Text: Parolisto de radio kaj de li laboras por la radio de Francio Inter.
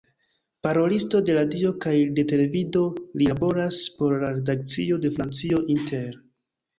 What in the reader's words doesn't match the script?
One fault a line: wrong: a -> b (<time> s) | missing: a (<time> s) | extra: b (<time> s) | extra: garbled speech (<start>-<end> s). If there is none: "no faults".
extra: televido (2.3 s)
wrong: radio -> redakcio (4.3 s)